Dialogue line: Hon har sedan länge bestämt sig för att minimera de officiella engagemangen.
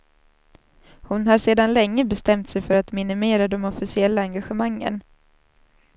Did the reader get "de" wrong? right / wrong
right